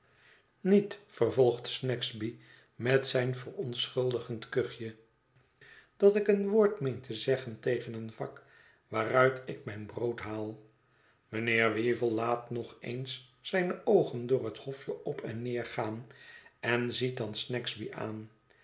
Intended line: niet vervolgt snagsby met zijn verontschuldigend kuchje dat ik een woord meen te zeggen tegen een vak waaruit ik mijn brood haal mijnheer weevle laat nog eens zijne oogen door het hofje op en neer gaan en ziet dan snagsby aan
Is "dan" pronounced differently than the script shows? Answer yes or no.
no